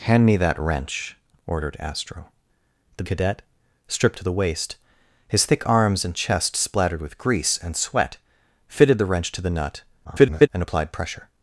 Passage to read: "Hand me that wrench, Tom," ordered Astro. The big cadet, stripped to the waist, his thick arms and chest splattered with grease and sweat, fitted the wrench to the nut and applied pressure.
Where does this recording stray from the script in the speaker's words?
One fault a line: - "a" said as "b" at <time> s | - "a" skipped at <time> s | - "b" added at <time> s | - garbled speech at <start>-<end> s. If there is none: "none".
- "Tom" skipped at 1.1 s
- "big" skipped at 3.0 s
- garbled speech at 10.0-10.5 s